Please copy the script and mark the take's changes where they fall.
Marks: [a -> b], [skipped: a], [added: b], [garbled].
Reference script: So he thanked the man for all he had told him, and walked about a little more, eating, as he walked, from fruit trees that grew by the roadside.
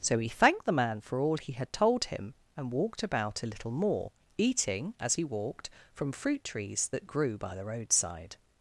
So he thanked the man for all he had told him, and walked about a little more, eating, as he walked, from fruit trees that grew by the roadside.